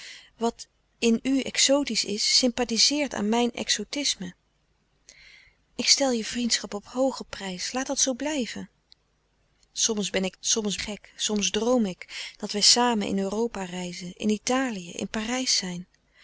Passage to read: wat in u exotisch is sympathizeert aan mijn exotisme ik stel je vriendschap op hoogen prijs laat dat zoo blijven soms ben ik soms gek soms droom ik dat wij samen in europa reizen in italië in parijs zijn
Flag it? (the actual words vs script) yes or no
no